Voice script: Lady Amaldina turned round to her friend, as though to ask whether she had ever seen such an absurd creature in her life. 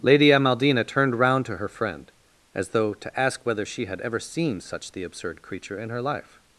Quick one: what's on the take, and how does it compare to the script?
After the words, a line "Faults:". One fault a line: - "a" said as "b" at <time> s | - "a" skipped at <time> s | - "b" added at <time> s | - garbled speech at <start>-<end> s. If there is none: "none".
Lady Amaldina turned round to her friend, as though to ask whether she had ever seen such the absurd creature in her life.
Faults:
- "an" said as "the" at 4.9 s